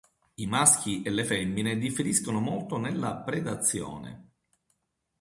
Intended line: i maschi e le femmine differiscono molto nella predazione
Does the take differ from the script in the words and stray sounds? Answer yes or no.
no